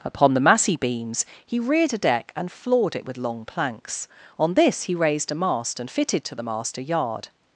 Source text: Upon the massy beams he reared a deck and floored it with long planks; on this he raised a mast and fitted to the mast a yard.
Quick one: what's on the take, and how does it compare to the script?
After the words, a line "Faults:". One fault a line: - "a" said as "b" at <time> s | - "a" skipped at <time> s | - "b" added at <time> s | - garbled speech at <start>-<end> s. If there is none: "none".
Upon the massy beams he reared a deck and floored it with long planks; on this he raised a mast and fitted to the mast a yard.
Faults:
none